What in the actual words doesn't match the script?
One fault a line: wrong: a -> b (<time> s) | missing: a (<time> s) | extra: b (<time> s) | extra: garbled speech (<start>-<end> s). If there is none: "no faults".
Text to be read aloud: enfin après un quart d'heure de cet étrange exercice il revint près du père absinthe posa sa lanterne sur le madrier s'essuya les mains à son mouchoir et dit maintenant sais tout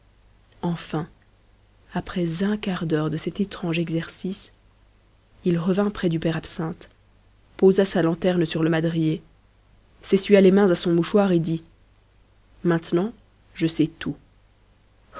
extra: je (13.5 s)